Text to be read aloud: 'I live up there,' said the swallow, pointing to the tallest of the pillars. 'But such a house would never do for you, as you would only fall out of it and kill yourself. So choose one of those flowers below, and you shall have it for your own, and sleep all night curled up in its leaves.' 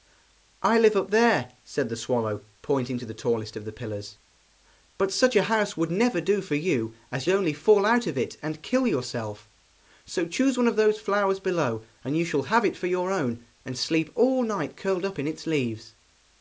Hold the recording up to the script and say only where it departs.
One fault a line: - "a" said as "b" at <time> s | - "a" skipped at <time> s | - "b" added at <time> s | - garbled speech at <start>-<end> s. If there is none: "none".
- "you would" skipped at 7.3 s